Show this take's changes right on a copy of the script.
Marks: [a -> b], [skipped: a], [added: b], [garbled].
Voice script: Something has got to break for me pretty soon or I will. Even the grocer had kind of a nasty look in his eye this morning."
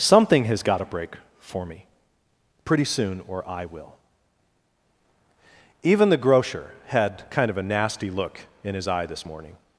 Something has got to break for me pretty soon or I will. Even the grocer had kind of a nasty look in his eye this morning."